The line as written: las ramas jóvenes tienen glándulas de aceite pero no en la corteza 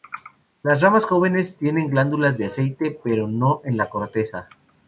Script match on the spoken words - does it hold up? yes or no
yes